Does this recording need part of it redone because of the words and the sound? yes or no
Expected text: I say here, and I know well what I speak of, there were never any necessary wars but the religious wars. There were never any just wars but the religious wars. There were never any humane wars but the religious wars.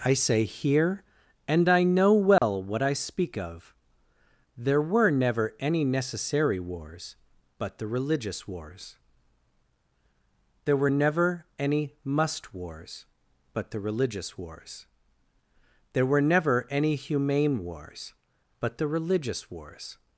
yes